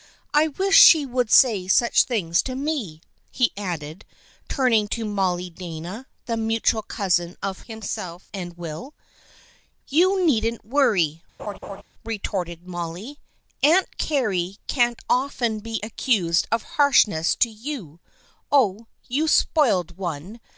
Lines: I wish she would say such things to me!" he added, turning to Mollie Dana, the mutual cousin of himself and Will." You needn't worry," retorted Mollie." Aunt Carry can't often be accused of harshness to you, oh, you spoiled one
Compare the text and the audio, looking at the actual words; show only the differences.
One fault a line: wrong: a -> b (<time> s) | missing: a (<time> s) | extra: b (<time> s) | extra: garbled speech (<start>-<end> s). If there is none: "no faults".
no faults